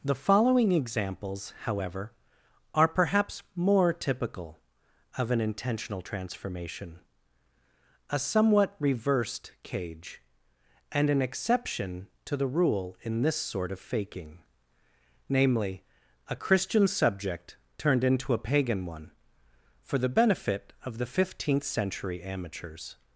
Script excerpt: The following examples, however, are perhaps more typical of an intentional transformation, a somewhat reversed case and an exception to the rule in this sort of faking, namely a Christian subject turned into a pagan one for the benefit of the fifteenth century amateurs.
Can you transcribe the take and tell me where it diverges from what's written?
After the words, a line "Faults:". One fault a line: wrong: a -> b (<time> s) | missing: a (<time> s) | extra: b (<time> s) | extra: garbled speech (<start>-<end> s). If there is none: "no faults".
The following examples, however, are perhaps more typical of an intentional transformation, a somewhat reversed cage and an exception to the rule in this sort of faking, namely a Christian subject turned into a pagan one for the benefit of the fifteenth century amateurs.
Faults:
wrong: case -> cage (9.6 s)